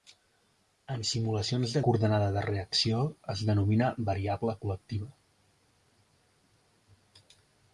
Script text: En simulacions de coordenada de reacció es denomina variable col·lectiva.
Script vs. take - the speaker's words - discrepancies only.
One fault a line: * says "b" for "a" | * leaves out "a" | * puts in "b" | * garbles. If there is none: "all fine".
all fine